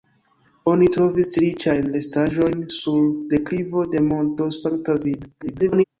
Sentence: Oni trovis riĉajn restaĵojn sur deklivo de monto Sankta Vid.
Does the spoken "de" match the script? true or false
true